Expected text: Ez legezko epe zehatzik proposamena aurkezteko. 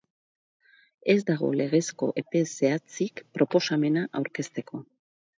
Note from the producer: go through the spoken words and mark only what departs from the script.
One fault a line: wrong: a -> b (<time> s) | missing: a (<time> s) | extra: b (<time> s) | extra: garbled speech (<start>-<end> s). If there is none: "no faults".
extra: dago (1.3 s)